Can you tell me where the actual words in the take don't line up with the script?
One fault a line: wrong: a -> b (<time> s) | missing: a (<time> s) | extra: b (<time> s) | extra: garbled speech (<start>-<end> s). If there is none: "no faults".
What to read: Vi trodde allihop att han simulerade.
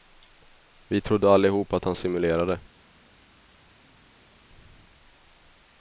no faults